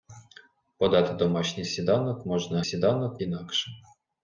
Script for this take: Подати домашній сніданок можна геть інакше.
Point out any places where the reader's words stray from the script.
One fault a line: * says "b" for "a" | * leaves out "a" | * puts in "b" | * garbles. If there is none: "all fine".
* says "сніданок" for "геть"